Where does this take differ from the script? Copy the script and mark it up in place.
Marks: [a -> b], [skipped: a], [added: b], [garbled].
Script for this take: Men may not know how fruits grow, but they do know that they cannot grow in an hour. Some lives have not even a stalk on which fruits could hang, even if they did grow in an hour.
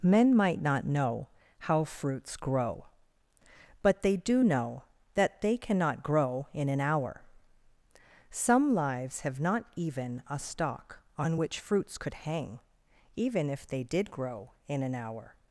Men [may -> might] not know how fruits grow, but they do know that they cannot grow in an hour. Some lives have not even a stalk on which fruits could hang, even if they did grow in an hour.